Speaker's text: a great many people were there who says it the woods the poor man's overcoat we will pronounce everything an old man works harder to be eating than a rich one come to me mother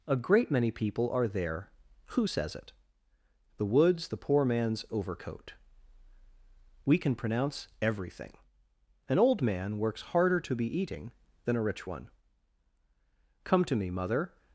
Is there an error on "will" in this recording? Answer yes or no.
yes